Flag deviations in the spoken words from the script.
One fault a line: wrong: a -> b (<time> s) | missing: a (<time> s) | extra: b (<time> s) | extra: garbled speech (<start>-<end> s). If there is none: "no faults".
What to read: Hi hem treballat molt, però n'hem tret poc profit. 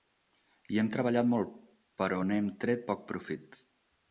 no faults